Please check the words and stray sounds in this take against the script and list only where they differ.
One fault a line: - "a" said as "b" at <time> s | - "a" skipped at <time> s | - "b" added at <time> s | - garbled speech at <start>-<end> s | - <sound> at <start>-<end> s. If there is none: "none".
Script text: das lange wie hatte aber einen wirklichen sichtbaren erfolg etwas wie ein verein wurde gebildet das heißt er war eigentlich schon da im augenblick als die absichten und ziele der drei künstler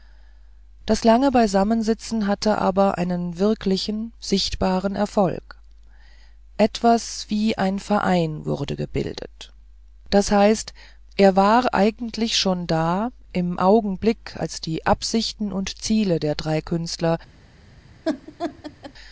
- "wie" said as "beisammensitzen" at 1.3 s
- laugh at 18.0-18.9 s